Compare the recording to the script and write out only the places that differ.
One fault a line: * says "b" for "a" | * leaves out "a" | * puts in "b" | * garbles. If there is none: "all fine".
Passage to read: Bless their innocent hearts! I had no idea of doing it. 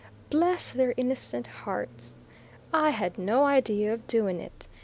all fine